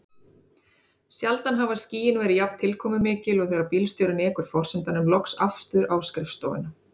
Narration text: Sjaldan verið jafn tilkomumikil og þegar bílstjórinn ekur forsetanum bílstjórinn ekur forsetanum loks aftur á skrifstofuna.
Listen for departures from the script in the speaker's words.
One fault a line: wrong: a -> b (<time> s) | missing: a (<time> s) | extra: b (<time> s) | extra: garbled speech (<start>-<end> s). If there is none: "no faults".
extra: hafa skýin (1.6 s)
missing: bílstjórinn ekur forsetanum (5.1 s)